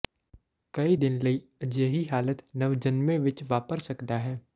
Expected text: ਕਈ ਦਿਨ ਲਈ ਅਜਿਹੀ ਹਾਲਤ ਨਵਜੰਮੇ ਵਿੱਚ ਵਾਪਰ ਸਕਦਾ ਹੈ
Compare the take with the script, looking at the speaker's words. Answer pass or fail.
pass